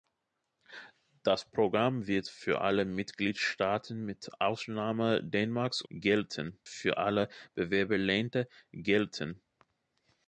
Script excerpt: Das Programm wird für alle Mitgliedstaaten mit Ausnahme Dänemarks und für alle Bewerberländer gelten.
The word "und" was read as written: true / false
false